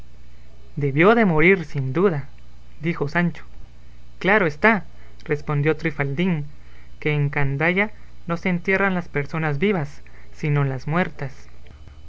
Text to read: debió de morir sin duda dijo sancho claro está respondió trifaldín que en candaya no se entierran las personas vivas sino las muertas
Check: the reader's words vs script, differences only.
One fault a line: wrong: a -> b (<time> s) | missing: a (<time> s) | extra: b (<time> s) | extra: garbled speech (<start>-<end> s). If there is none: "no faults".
no faults